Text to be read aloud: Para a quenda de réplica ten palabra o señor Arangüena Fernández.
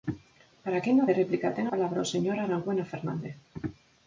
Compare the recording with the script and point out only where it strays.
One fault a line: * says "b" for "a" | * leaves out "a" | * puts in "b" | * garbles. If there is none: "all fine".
all fine